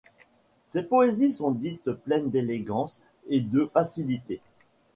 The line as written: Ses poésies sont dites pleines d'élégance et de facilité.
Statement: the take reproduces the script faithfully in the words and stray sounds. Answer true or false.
true